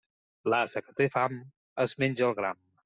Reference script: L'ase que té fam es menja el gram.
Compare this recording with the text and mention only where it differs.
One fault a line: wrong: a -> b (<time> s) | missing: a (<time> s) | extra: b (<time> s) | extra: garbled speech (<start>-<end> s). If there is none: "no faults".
no faults